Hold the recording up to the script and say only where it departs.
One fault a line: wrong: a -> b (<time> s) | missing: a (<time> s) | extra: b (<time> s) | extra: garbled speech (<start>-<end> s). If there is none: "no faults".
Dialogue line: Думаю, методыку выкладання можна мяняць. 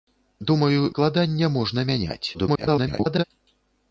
missing: методыку (0.8 s)
extra: garbled speech (2.3-3.2 s)